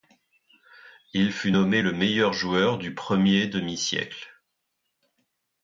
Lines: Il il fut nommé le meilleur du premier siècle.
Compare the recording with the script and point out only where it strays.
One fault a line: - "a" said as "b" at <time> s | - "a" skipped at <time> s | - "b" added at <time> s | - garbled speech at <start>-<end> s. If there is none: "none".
- "il" skipped at 1.3 s
- "joueur" added at 2.3 s
- "demi" added at 3.5 s